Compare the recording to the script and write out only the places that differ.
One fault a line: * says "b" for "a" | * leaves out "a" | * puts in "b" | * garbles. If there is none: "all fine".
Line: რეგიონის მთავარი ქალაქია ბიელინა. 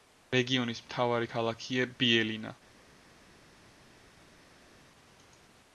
all fine